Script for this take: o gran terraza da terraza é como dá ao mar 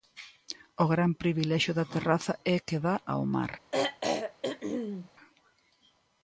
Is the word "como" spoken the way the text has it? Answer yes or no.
no